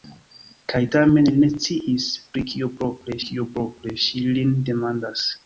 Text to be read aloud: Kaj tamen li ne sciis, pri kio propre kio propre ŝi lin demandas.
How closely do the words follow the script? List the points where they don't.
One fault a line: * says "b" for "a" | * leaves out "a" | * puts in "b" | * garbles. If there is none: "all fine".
all fine